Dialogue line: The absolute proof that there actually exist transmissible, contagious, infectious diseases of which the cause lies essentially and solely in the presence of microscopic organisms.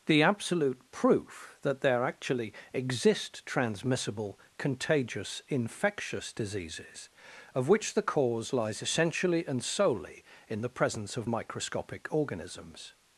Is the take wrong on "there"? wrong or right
right